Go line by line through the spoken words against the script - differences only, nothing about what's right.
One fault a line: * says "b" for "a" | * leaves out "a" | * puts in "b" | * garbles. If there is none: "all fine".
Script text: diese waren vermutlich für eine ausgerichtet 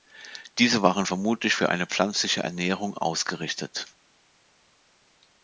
* puts in "pflanzliche ernährung"